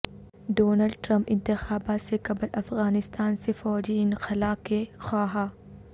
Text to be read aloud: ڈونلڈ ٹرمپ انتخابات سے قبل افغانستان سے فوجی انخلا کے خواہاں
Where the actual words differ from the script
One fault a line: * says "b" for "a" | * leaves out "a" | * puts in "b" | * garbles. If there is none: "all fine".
all fine